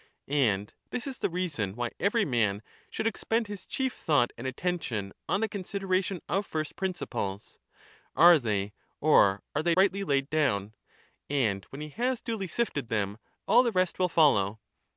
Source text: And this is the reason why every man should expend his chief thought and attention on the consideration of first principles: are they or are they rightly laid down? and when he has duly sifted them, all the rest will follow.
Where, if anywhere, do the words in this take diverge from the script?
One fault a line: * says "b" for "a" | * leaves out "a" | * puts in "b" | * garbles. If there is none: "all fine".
all fine